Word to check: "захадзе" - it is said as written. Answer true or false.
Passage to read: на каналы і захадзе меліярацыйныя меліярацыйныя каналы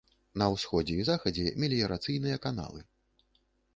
true